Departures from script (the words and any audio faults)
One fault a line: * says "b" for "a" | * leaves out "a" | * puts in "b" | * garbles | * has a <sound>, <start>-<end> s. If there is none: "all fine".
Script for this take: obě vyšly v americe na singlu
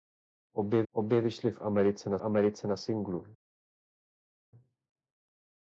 * puts in "obě"
* puts in "americe na"